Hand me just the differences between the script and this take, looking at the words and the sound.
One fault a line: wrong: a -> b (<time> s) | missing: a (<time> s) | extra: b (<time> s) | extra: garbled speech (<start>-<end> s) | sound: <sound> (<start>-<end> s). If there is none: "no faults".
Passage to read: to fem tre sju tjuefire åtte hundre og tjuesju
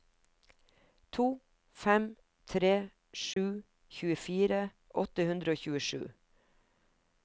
sound: dropout (3.3-3.4 s)